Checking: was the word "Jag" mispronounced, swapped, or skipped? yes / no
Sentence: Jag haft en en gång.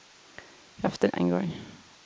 no